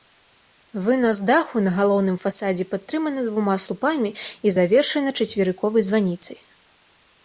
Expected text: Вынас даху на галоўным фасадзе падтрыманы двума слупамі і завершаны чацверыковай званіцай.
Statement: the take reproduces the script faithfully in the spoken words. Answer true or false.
true